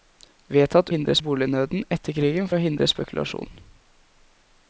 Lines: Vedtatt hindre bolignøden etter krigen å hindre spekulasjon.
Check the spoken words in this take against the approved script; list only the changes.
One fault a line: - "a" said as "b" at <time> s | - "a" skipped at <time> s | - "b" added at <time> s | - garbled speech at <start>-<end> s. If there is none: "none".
none